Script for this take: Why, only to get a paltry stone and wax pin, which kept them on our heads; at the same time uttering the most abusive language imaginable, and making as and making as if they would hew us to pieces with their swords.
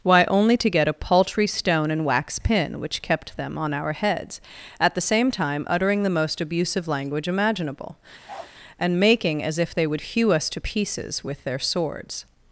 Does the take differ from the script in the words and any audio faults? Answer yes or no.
yes